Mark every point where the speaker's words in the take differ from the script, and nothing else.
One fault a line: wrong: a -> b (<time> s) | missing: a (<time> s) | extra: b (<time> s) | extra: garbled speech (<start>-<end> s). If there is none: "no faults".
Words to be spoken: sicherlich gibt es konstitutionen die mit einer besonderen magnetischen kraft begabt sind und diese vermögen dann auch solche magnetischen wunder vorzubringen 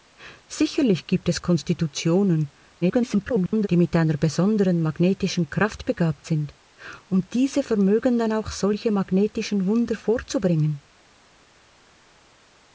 extra: garbled speech (2.8-3.7 s)